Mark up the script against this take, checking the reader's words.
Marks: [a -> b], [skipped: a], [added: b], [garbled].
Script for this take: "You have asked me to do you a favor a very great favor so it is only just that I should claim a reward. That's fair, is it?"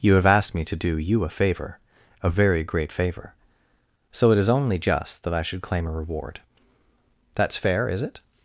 "You have asked me to do you a favor a very great favor so it is only just that I should claim a reward. That's fair, is it?"